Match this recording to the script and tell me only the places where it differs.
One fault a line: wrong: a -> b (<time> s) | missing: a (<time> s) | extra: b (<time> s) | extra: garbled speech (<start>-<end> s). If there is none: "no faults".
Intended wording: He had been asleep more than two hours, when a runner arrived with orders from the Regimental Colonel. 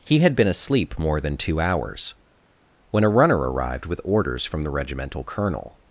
no faults